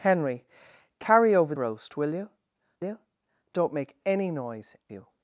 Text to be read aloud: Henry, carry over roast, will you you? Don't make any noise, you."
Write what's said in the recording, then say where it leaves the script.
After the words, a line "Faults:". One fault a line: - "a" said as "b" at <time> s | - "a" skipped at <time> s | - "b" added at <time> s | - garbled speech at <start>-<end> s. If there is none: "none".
Henry, carry over roast, will you you? Don't make any noise, you."
Faults:
none